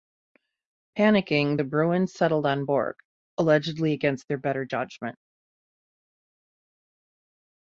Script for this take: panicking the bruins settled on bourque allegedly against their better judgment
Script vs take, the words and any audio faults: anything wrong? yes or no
no